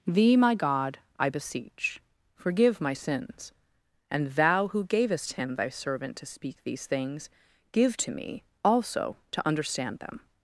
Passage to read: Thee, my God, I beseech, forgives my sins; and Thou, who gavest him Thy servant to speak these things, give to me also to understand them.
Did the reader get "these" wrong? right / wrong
right